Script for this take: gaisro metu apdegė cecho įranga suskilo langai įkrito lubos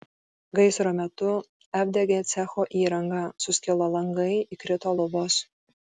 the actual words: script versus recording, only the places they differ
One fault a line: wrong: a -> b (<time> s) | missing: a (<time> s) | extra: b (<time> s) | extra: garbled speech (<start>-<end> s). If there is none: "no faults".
no faults